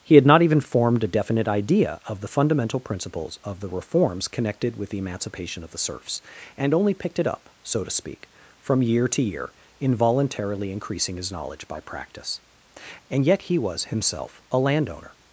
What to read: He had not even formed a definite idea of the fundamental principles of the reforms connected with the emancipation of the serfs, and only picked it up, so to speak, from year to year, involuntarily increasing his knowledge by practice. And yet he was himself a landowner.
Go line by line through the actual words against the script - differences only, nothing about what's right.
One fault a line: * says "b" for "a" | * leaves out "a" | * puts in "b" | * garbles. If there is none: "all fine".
all fine